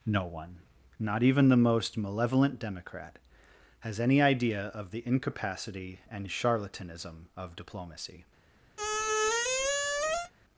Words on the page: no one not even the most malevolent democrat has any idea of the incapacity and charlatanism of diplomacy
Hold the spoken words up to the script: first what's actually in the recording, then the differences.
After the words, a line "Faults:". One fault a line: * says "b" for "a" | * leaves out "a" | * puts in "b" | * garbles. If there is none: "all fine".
no one not even the most malevolent democrat has any idea of the incapacity and charlatanism of diplomacy
Faults:
all fine